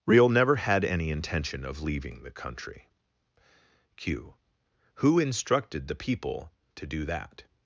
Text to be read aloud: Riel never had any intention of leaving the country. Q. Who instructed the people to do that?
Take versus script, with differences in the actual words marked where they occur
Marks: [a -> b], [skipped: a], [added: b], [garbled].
Riel never had any intention of leaving the country. Q. Who instructed the people to do that?